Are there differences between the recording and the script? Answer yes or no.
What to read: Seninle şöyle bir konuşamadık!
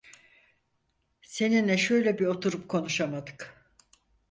yes